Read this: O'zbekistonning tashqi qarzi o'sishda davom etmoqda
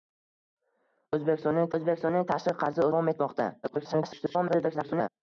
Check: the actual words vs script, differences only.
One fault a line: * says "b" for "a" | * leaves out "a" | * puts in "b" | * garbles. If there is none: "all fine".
* puts in "o'zbekistonning"
* leaves out "o'sishda"
* garbles